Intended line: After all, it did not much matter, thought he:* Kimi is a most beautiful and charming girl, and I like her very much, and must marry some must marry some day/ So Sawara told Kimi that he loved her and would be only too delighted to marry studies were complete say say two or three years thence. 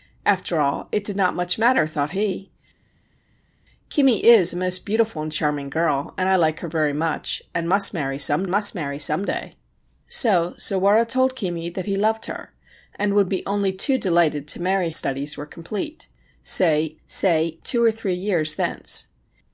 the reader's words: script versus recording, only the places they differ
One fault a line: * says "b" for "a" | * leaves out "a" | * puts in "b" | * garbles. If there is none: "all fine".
all fine